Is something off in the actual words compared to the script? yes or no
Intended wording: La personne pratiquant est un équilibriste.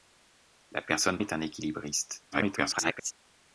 yes